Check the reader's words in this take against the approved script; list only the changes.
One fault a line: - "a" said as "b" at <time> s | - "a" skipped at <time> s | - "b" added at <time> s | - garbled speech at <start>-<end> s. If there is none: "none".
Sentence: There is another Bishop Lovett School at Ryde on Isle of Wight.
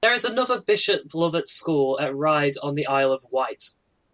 - "the" added at 2.8 s